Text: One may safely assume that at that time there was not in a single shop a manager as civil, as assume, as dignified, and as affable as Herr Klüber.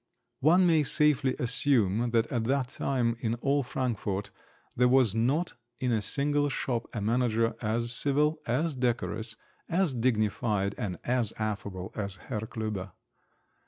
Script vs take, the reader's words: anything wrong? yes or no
yes